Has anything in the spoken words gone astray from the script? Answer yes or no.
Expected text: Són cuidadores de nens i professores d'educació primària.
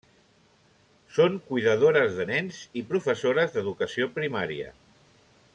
no